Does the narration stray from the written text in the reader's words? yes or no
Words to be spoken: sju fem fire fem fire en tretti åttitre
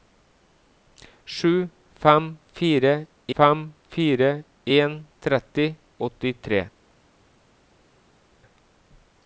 no